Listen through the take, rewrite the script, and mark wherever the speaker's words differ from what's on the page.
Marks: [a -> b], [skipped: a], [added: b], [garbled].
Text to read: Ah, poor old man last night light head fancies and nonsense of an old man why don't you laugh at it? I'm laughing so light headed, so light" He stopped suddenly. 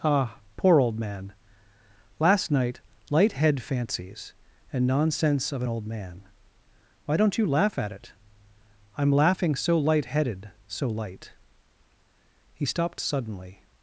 Ah, poor old man last night light head fancies and nonsense of an old man why don't you laugh at it? I'm laughing so light headed, so light" He stopped suddenly.